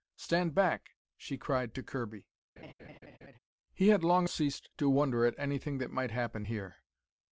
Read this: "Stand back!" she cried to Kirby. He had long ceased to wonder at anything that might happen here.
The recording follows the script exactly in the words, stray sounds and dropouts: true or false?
false